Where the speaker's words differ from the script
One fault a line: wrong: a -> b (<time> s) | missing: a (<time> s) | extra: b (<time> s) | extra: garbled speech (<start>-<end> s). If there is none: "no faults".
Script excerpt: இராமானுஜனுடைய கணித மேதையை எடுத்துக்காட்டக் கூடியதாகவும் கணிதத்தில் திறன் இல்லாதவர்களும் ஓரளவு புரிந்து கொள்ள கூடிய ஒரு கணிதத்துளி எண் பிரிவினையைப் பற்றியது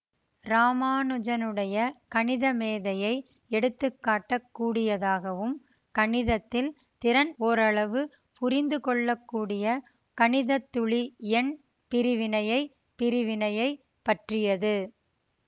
missing: இல்லாதவர்களும் (7.3 s)
missing: ஒரு (9.7 s)
extra: பிரிவினையைப் (13.0 s)